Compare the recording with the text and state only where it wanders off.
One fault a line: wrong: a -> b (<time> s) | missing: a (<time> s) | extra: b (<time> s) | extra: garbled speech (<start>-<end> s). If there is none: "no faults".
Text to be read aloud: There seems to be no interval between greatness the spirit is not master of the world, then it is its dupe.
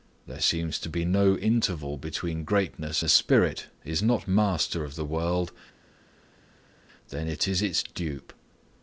no faults